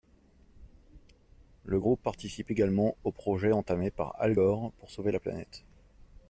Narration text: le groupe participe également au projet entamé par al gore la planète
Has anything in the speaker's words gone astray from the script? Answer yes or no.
yes